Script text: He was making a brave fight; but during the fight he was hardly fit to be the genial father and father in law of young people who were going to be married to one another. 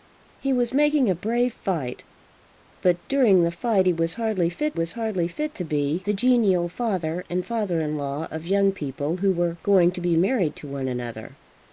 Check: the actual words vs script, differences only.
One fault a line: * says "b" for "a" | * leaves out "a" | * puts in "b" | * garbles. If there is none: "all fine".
* puts in "was hardly fit"